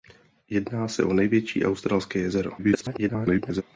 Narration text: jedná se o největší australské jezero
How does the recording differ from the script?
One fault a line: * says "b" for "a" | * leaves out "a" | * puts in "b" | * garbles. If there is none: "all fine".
* garbles